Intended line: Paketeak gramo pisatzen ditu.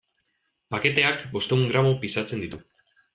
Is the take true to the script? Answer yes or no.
no